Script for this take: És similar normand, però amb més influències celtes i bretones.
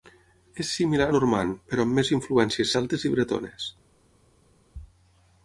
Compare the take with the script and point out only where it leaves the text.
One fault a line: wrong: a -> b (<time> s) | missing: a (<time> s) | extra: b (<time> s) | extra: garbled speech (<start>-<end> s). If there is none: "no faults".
no faults